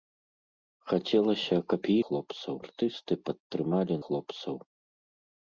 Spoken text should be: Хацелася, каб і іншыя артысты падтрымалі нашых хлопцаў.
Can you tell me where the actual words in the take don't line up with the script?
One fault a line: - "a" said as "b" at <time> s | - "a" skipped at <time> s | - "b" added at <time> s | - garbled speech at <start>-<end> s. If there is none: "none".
- "іншыя" said as "хлопцаў" at 2.0 s
- "нашых" skipped at 3.9 s